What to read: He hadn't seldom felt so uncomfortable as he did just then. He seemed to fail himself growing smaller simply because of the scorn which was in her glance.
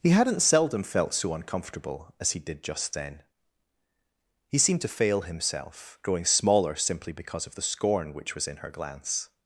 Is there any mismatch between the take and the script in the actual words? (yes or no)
no